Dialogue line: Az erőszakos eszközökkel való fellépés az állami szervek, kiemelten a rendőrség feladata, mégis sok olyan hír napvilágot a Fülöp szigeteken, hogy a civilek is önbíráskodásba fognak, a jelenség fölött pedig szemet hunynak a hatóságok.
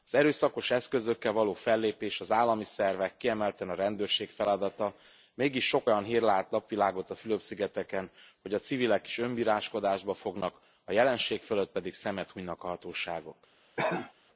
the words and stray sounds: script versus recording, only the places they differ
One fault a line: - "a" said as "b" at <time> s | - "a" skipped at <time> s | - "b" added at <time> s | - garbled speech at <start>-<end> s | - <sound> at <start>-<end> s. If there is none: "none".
- "lát" added at 6.2 s
- cough at 13.8-14.1 s